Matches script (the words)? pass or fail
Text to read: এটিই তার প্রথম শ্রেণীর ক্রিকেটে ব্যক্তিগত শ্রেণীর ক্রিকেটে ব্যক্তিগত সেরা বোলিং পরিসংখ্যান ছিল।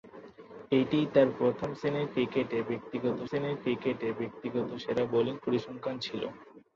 pass